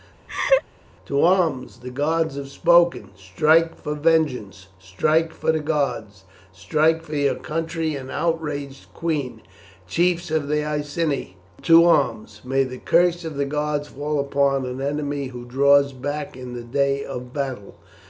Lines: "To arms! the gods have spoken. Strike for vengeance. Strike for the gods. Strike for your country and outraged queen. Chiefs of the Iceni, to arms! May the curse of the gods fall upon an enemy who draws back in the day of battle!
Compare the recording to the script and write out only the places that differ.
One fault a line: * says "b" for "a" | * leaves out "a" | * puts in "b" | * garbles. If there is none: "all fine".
all fine